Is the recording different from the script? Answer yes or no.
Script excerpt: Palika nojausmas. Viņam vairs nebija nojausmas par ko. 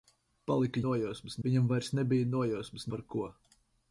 no